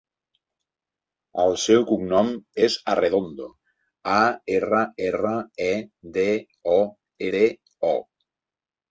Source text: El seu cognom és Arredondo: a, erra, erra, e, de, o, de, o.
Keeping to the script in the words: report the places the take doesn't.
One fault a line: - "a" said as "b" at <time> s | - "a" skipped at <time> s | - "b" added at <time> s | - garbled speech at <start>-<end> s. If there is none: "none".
none